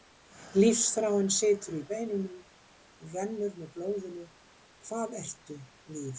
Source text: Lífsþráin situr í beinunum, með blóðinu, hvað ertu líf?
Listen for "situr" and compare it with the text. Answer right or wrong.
right